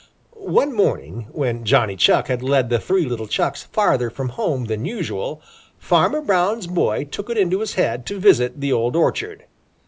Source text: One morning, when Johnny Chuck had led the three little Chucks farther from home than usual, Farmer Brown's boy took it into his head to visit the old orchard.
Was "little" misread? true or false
false